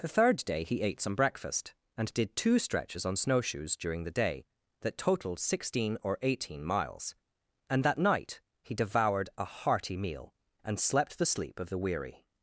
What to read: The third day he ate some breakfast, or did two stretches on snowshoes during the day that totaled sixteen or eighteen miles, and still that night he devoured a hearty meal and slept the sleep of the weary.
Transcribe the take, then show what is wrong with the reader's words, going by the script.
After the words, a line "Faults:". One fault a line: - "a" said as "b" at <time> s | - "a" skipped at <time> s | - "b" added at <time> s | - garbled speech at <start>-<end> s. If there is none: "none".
The third day he ate some breakfast, and did two stretches on snowshoes during the day that totaled sixteen or eighteen miles, and that night he devoured a hearty meal and slept the sleep of the weary.
Faults:
- "or" said as "and" at 1.9 s
- "still" skipped at 7.8 s